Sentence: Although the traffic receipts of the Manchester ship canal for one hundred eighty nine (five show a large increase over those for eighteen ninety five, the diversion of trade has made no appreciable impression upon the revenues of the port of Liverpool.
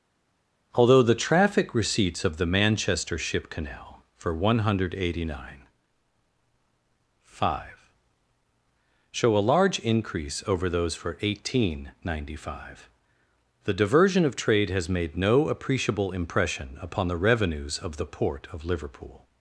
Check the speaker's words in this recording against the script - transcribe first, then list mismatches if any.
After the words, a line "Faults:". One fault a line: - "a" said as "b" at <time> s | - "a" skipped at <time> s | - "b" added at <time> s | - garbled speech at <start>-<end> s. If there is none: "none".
Although the traffic receipts of the Manchester ship canal for one hundred eighty nine (five show a large increase over those for eighteen ninety five, the diversion of trade has made no appreciable impression upon the revenues of the port of Liverpool.
Faults:
none